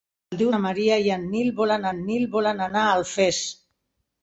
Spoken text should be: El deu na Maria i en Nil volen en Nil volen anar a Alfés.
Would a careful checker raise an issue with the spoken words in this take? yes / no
no